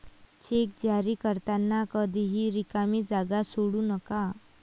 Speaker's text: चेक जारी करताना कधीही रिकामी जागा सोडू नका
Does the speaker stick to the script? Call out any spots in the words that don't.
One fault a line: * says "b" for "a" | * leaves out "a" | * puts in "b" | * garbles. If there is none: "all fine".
all fine